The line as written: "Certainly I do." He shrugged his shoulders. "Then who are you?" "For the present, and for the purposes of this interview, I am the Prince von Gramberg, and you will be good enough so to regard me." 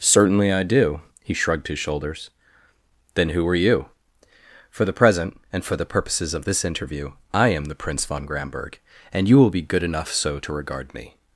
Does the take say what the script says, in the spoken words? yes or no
yes